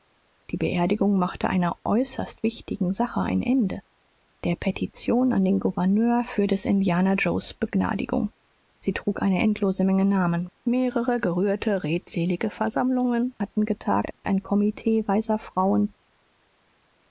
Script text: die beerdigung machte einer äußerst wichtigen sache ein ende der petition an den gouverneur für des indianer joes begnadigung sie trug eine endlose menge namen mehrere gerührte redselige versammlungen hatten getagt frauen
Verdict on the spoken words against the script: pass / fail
fail